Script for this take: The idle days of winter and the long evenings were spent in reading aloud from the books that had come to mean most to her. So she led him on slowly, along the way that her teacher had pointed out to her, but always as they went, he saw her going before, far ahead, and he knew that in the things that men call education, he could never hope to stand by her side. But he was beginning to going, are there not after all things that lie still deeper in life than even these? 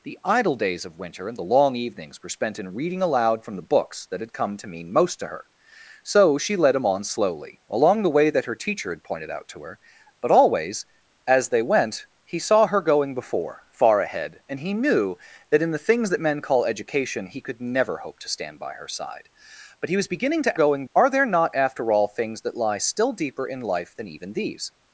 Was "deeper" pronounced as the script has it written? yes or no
yes